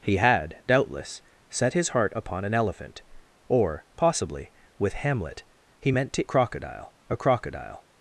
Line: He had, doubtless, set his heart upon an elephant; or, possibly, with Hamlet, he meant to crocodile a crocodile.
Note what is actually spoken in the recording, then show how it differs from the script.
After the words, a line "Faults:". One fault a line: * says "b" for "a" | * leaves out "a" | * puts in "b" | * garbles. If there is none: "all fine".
He had, doubtless, set his heart upon an elephant; or, possibly, with Hamlet, he meant to crocodile a crocodile.
Faults:
all fine